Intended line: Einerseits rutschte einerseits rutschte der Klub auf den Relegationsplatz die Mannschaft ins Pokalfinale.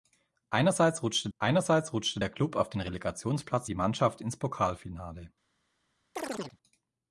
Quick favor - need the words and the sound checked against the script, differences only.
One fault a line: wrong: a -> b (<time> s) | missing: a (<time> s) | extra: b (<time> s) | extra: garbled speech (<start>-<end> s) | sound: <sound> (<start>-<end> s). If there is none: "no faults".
sound: chirp (6.2-6.6 s)